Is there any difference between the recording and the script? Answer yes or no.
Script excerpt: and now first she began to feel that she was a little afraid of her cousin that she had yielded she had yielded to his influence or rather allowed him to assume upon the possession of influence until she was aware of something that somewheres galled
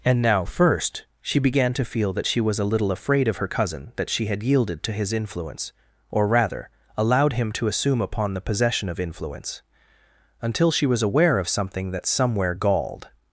yes